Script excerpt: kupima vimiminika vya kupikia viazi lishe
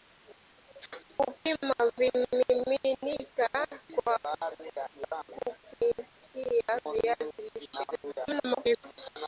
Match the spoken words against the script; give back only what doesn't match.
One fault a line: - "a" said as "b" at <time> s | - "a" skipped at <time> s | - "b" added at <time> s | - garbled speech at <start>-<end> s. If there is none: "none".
- garbled speech at 7.9-8.8 s